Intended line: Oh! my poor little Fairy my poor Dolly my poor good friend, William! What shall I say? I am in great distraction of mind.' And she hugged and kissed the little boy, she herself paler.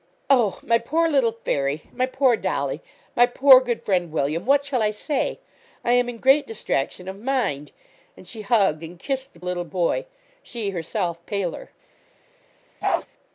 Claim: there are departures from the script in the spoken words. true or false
false